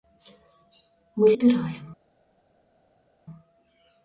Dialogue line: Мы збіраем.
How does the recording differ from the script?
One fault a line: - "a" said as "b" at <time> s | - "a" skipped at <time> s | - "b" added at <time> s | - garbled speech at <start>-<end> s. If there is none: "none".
none